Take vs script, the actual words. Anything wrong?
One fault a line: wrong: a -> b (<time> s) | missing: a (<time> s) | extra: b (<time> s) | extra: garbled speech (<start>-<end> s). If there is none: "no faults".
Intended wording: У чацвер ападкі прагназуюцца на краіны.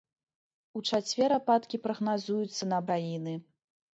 no faults